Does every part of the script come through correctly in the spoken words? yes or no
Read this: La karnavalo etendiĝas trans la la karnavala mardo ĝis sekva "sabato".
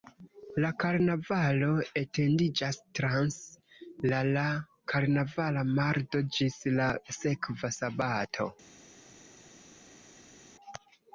no